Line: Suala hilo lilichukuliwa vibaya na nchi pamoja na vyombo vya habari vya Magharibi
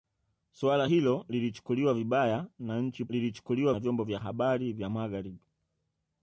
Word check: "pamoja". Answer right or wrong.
wrong